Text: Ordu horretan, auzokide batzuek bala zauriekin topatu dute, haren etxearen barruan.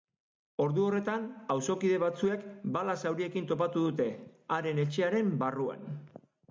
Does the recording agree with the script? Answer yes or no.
yes